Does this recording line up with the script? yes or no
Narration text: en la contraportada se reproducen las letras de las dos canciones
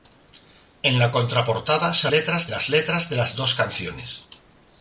no